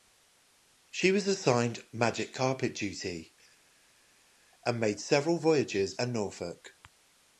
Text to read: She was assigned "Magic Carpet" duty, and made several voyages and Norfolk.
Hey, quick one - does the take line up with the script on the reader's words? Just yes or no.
yes